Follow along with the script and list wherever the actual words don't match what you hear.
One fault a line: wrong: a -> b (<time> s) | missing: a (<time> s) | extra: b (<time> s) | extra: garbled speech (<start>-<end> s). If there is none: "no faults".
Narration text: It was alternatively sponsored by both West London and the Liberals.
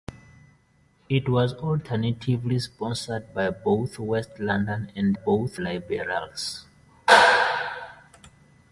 wrong: the -> both (5.1 s)